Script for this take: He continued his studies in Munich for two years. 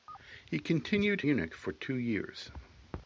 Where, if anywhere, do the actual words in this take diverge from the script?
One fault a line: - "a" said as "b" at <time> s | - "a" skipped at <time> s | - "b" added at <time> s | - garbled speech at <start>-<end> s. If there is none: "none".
- "his studies in" skipped at 1.2 s